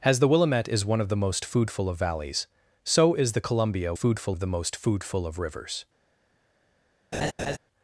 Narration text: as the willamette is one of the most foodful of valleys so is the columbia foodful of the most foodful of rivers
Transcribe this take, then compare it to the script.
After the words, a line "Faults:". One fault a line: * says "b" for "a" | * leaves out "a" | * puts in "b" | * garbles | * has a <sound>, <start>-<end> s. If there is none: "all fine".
as the willamette is one of the most foodful of valleys so is the columbia foodful of the most foodful of rivers
Faults:
* has a laugh, 7.1-7.6 s